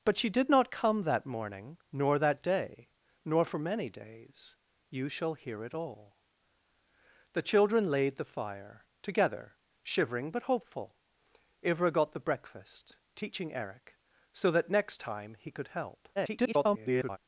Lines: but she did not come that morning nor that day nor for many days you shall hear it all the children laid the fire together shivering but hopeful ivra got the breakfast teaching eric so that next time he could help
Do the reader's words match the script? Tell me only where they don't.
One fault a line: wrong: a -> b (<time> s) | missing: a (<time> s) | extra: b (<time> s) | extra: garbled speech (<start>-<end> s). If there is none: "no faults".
extra: garbled speech (16.2-17.2 s)